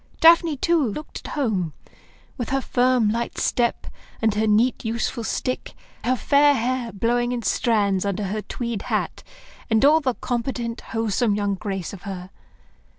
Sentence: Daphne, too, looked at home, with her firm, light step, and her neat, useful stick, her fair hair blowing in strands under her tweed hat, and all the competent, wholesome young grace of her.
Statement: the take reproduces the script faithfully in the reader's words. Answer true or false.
true